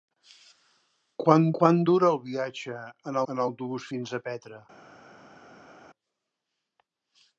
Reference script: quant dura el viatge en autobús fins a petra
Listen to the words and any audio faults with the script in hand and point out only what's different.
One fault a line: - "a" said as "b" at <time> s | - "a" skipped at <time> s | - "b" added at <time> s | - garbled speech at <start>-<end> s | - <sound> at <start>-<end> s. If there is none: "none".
- "quant" added at 1.6 s
- "en" added at 3.3 s